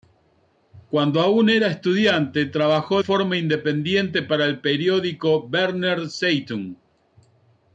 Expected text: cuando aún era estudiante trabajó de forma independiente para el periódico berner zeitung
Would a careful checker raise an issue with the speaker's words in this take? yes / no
yes